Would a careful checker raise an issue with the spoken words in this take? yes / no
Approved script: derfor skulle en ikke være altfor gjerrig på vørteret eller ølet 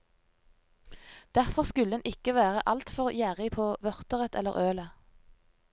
no